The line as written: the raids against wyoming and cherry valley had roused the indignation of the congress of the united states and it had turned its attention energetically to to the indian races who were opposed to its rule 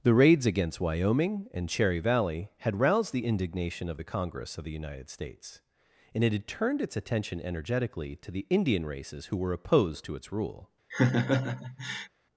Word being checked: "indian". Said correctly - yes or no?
yes